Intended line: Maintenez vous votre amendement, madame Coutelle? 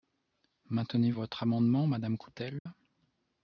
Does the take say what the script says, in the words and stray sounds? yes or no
no